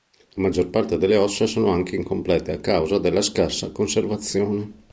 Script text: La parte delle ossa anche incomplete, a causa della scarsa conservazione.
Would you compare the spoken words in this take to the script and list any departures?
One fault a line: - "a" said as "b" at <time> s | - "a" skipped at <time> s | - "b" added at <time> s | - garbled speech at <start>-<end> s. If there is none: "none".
- "maggior" added at 0.4 s
- "sono" added at 1.4 s